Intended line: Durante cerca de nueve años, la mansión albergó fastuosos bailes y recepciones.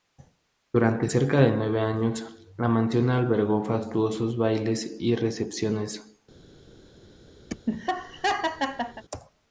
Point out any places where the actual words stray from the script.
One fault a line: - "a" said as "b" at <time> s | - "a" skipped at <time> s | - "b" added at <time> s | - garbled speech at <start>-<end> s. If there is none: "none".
none